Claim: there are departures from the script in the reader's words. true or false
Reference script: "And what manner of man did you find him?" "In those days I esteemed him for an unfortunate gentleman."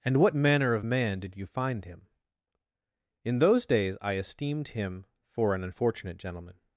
false